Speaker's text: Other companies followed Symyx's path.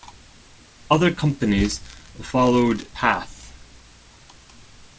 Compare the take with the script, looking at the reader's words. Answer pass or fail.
fail